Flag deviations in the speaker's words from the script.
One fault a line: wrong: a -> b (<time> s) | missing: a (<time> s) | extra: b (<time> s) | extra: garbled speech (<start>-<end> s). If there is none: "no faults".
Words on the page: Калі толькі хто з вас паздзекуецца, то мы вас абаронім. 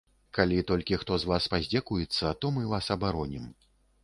no faults